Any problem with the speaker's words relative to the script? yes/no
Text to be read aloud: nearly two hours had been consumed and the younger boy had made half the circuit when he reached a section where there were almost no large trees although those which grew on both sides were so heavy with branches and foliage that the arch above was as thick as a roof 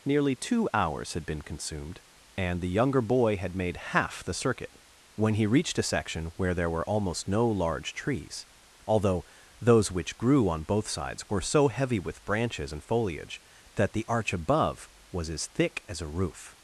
no